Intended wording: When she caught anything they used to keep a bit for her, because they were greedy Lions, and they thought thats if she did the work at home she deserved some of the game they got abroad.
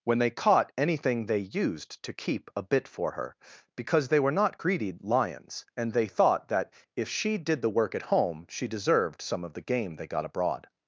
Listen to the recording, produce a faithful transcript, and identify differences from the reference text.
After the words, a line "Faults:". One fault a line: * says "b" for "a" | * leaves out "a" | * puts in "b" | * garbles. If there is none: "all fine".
When they caught anything they used to keep a bit for her, because they were not greedy Lions, and they thought that if she did the work at home she deserved some of the game they got abroad.
Faults:
* says "they" for "she"
* puts in "not"
* says "that" for "thats"